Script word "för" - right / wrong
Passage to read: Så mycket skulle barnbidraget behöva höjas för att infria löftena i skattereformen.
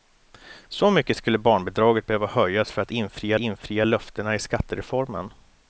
right